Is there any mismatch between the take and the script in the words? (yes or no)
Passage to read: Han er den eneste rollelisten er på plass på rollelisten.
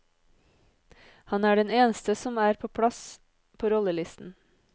yes